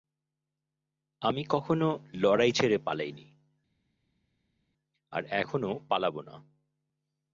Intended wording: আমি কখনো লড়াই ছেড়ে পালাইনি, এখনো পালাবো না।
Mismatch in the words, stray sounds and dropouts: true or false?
true